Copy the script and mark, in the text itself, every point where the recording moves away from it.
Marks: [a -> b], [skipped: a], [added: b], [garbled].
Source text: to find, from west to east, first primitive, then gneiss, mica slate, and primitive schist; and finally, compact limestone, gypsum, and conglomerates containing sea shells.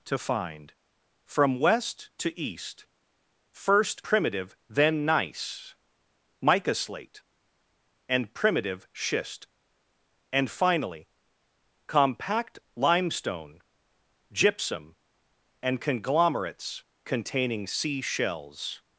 to find, from west to east, first primitive, then gneiss, mica slate, and primitive schist; and finally, compact limestone, gypsum, and conglomerates containing sea shells.